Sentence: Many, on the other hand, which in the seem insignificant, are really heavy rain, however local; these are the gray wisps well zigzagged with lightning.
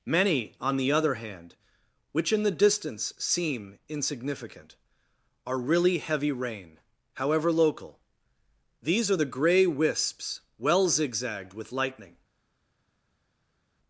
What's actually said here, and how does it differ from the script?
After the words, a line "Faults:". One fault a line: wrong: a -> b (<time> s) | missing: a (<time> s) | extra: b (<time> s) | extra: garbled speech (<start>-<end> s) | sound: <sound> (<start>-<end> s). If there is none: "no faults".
Many, on the other hand, which in the distance seem insignificant, are really heavy rain, however local; these are the gray wisps well zigzagged with lightning.
Faults:
extra: distance (2.5 s)